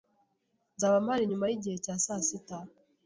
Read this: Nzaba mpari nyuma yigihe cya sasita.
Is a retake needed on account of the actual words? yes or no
no